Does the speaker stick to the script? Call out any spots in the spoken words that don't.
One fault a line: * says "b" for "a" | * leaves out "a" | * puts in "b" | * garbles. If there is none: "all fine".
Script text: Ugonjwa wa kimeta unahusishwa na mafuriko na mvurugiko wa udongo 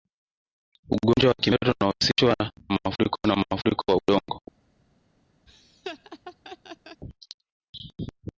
* leaves out "na"
* says "mafuriko" for "mvurugiko"